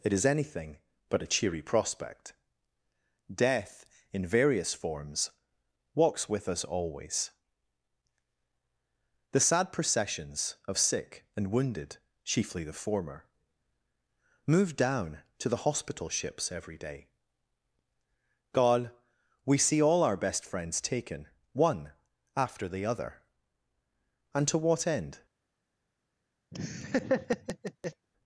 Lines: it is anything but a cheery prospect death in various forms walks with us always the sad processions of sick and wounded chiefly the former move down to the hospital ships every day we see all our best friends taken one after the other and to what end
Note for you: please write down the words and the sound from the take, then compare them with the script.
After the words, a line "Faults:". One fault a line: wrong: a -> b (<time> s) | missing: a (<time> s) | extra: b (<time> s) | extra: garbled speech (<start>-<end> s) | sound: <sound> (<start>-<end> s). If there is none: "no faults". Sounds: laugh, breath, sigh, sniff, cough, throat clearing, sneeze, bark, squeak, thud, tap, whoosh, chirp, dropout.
it is anything but a cheery prospect death in various forms walks with us always the sad processions of sick and wounded chiefly the former move down to the hospital ships every day god we see all our best friends taken one after the other and to what end
Faults:
extra: god (18.5 s)
sound: laugh (26.5-28.1 s)